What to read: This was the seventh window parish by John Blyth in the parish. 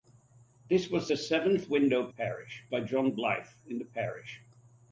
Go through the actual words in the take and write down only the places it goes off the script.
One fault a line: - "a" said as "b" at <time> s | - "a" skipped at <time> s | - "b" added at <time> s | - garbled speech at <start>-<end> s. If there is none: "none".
none